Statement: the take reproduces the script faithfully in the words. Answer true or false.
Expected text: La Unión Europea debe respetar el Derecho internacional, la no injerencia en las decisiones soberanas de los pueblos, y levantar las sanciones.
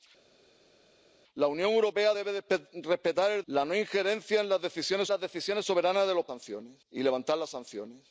false